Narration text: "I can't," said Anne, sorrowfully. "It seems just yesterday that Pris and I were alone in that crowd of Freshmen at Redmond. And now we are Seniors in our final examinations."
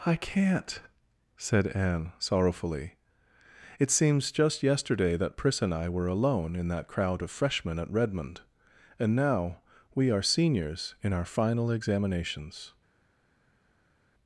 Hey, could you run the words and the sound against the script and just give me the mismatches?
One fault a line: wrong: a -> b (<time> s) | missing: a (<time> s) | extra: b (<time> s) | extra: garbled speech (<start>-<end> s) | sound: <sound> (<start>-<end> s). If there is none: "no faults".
no faults